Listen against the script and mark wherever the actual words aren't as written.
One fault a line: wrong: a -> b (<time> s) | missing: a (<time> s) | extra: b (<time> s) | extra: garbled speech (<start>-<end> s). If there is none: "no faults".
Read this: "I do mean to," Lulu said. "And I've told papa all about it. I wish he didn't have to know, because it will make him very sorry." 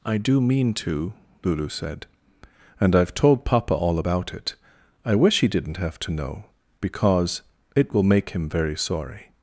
no faults